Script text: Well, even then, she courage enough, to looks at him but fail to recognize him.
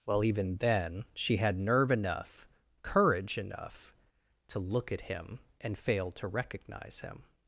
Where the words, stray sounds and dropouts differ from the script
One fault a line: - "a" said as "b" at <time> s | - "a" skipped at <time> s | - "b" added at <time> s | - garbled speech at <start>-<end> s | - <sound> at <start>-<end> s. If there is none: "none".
- "had nerve enough" added at 1.4 s
- "looks" said as "look" at 4.6 s
- "but" said as "and" at 5.6 s